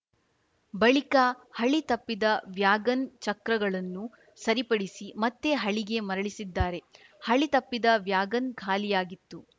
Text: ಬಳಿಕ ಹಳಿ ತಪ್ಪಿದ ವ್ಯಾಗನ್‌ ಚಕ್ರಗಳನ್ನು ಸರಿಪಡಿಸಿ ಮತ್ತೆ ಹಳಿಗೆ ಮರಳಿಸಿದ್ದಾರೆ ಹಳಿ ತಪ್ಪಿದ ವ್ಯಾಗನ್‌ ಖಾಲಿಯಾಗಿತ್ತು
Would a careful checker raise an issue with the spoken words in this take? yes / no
no